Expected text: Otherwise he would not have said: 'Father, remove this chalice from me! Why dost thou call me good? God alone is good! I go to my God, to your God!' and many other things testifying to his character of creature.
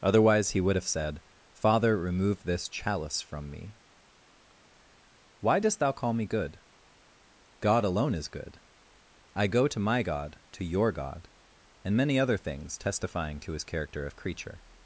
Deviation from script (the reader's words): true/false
true